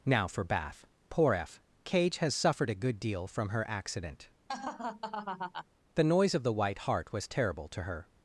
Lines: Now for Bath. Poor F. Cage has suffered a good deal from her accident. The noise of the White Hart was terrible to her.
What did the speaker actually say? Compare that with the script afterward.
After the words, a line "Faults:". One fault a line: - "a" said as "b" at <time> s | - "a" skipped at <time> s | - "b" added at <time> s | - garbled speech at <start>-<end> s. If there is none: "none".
Now for Bath. Poor F. Cage has suffered a good deal from her accident. The noise of the White Hart was terrible to her.
Faults:
none